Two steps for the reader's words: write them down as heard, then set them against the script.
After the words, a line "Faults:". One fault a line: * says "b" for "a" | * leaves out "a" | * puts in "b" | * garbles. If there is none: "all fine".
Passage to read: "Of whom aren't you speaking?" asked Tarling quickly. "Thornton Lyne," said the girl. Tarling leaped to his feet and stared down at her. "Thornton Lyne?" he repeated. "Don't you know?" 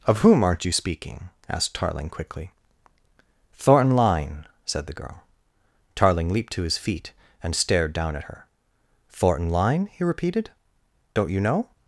"Of whom aren't you speaking?" asked Tarling quickly. "Thornton Lyne," said the girl. Tarling leaped to his feet and stared down at her. "Thornton Lyne?" he repeated. "Don't you know?"
Faults:
all fine